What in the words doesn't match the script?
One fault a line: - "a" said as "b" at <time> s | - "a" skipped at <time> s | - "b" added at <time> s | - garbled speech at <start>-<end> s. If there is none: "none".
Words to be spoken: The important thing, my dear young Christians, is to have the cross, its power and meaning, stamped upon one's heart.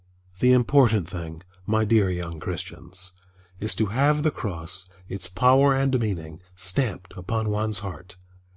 none